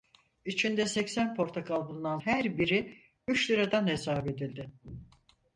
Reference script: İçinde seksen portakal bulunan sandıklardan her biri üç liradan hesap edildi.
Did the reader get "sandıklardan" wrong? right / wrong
wrong